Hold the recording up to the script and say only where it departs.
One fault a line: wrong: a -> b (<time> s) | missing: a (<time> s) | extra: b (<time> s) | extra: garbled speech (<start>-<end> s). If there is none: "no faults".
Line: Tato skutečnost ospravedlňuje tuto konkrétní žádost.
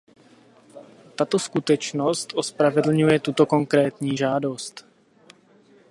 no faults